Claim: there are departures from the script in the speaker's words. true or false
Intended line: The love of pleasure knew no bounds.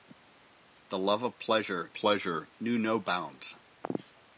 true